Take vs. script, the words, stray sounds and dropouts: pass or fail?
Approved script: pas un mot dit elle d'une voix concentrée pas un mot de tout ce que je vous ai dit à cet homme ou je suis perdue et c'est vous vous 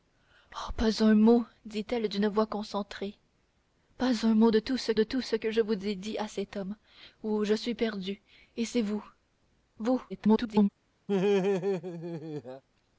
fail